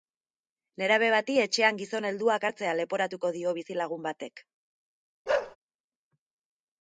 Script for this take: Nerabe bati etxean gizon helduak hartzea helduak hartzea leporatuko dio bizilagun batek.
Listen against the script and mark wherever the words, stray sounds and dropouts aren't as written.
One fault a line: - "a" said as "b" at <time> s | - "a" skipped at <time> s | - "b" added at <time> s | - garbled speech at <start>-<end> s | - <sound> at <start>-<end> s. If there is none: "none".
- "helduak hartzea" skipped at 2.8 s
- bark at 5.3-5.6 s